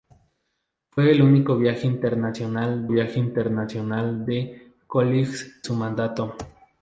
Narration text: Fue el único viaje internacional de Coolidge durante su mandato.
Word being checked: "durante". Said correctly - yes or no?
no